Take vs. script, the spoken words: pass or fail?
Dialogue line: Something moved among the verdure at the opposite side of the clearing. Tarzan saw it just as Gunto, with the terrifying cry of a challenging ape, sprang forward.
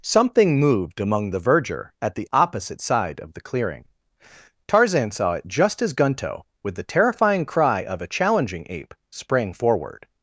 pass